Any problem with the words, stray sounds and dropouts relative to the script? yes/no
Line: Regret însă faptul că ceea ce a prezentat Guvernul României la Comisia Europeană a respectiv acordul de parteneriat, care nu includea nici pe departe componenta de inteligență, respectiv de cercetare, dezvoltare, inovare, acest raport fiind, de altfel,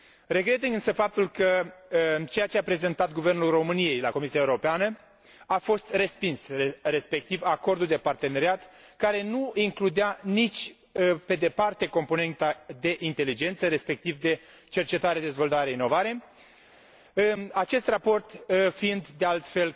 yes